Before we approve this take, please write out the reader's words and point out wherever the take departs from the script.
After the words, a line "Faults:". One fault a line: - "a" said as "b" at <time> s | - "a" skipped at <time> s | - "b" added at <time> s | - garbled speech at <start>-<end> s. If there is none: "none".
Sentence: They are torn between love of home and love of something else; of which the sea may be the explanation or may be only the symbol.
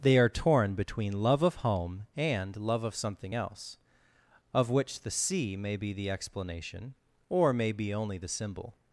They are torn between love of home and love of something else; of which the sea may be the explanation or may be only the symbol.
Faults:
none